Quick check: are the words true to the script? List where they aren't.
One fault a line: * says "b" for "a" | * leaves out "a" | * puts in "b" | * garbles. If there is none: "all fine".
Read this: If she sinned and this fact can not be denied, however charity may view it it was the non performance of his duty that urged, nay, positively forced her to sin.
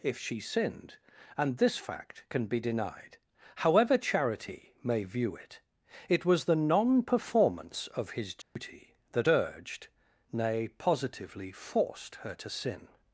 * leaves out "not"